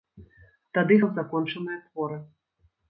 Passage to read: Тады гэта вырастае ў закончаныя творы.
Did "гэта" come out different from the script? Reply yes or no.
yes